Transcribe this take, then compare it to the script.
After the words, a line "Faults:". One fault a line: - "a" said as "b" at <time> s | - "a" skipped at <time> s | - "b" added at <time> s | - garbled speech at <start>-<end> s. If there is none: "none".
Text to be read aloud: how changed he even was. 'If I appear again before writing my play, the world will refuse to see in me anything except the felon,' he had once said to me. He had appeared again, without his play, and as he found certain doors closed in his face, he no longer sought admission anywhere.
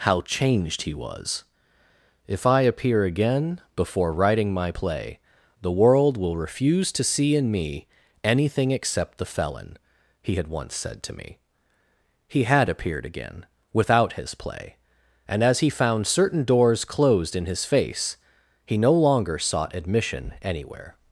how changed he was. 'If I appear again before writing my play, the world will refuse to see in me anything except the felon,' he had once said to me. He had appeared again, without his play, and as he found certain doors closed in his face, he no longer sought admission anywhere.
Faults:
- "even" skipped at 0.9 s